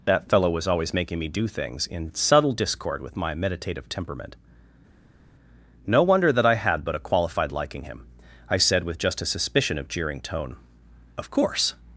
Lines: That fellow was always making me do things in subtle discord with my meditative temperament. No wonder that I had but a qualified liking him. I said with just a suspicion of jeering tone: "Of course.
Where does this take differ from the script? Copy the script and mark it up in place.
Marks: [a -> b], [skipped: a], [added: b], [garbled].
That fellow was always making me do things in subtle discord with my meditative temperament. No wonder that I had but a qualified liking him. I said with just a suspicion of jeering tone: "Of course.